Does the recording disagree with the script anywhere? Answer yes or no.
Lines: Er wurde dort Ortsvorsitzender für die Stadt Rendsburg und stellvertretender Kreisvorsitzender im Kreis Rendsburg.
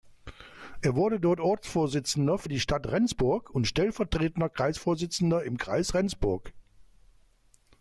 no